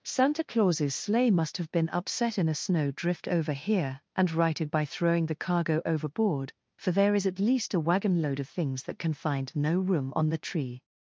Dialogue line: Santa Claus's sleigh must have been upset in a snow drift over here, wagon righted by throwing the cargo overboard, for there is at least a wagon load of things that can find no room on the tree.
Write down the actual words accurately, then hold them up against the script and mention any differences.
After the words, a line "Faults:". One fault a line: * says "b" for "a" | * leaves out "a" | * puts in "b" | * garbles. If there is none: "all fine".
Santa Claus's sleigh must have been upset in a snow drift over here, and righted by throwing the cargo overboard, for there is at least a wagon load of things that can find no room on the tree.
Faults:
* says "and" for "wagon"